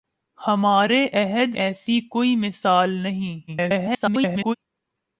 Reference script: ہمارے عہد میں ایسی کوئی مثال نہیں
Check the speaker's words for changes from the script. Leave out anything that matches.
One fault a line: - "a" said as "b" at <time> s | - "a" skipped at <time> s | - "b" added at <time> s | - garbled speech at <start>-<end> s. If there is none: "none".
- "میں" skipped at 1.6 s
- garbled speech at 3.5-4.6 s